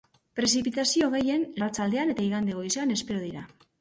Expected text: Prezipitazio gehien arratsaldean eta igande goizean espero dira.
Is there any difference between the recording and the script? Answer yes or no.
no